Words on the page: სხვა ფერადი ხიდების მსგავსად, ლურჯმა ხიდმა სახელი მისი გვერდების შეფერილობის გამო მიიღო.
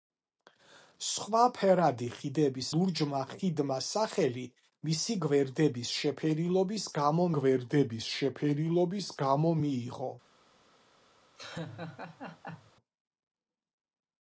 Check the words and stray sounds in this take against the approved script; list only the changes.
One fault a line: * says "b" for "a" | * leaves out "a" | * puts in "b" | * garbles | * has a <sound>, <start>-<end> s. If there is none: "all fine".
* leaves out "მსგავსად"
* puts in "გვერდების შეფერილობის გამო"
* has a laugh, 11.4-12.7 s